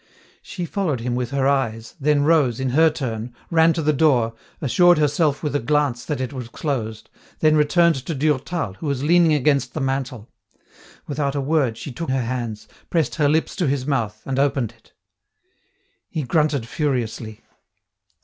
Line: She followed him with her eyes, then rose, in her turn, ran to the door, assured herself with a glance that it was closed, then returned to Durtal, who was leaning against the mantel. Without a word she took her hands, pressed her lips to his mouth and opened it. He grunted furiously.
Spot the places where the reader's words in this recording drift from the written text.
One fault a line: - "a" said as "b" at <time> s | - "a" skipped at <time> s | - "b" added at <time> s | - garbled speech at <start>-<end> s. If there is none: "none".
none